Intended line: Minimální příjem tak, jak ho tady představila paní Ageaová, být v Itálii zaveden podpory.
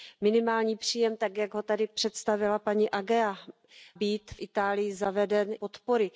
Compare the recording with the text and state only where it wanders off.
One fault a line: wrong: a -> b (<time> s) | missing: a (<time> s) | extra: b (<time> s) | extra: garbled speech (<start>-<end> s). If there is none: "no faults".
no faults